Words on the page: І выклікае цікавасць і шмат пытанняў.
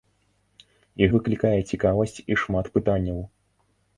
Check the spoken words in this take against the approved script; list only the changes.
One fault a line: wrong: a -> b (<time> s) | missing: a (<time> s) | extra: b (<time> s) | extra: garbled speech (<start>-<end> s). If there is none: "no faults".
no faults